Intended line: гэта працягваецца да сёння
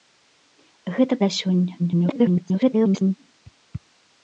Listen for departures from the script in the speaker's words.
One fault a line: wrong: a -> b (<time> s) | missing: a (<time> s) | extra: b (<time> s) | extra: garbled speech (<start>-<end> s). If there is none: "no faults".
missing: працягваецца (1.1 s)
extra: garbled speech (1.8-3.2 s)